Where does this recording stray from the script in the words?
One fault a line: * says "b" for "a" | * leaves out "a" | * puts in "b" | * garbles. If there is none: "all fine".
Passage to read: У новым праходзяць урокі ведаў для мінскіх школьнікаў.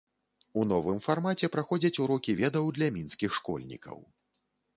* puts in "фармаце"